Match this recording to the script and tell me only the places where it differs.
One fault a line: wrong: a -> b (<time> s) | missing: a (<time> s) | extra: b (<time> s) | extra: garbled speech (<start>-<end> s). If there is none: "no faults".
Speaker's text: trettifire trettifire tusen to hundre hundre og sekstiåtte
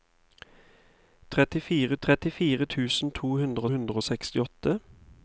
no faults